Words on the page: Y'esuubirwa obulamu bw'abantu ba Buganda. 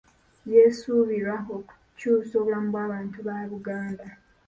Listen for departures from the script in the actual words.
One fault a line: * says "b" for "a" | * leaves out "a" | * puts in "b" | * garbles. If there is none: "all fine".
* puts in "okukyusa"